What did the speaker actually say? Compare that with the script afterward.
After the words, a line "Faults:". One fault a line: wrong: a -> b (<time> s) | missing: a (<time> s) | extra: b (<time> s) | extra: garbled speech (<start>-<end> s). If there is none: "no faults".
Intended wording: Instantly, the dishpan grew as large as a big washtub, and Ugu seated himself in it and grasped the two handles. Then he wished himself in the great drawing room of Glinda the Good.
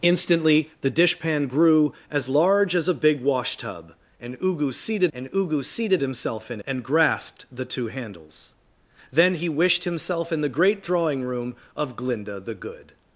Instantly, the dishpan grew as large as a big washtub, and Ugu seated and Ugu seated himself in and grasped the two handles. Then he wished himself in the great drawing room of Glinda the Good.
Faults:
extra: and Ugu seated (5.1 s)
missing: it (6.6 s)